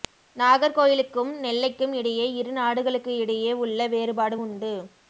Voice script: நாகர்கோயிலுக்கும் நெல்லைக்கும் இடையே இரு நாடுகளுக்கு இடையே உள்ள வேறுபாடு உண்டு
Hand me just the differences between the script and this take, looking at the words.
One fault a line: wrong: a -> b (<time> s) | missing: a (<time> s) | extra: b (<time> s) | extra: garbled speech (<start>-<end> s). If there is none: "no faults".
no faults